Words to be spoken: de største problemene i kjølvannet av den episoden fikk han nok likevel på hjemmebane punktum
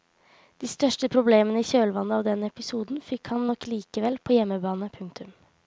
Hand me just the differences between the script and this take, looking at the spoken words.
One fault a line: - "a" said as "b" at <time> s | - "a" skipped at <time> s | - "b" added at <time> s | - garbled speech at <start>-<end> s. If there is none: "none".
none